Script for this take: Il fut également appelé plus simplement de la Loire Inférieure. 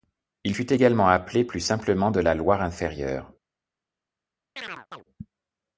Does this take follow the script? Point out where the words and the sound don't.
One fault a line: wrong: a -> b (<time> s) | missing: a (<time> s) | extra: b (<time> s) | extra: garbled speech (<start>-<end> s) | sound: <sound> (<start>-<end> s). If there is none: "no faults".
sound: chirp (4.6-5.0 s)